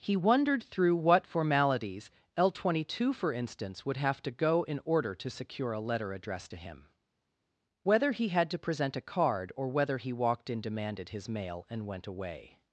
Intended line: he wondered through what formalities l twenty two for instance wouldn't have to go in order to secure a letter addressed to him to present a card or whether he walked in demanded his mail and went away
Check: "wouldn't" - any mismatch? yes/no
yes